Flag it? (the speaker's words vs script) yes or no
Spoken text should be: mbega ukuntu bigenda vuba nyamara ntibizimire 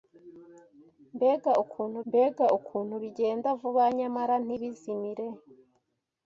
yes